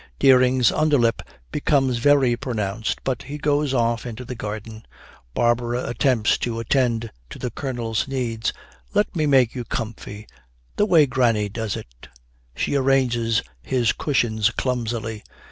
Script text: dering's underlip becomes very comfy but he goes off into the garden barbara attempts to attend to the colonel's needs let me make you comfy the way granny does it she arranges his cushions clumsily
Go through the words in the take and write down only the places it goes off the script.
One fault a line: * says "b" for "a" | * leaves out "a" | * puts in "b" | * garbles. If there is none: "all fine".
* says "pronounced" for "comfy"